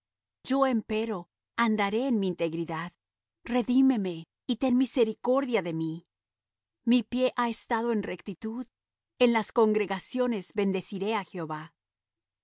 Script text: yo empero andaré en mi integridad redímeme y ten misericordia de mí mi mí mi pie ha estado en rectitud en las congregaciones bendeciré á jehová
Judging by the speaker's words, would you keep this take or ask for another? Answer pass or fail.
fail